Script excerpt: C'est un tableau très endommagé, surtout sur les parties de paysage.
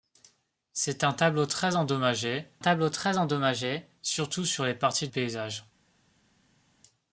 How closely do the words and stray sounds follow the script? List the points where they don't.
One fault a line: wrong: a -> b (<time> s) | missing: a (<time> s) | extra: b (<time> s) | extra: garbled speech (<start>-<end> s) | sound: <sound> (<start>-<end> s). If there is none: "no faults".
extra: tableau très endommagé (2.6 s)
missing: de (5.1 s)